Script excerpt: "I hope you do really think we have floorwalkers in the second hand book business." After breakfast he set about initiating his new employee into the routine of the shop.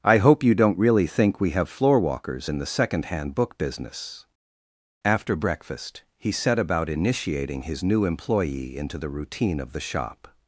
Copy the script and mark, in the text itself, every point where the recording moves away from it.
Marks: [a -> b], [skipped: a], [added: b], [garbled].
"I hope you [do -> don't] really think we have floorwalkers in the second hand book business." After breakfast he set about initiating his new employee into the routine of the shop.